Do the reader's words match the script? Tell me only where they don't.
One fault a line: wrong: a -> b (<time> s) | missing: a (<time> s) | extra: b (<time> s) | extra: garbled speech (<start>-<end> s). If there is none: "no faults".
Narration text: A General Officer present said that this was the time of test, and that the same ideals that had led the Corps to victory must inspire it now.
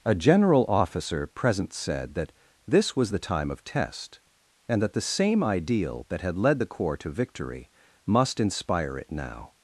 wrong: ideals -> ideal (5.4 s)